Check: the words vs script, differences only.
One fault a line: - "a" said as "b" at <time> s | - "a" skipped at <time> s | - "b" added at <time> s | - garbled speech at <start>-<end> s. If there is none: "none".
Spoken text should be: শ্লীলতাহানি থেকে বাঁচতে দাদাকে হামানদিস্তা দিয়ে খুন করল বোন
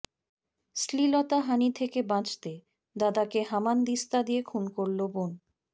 none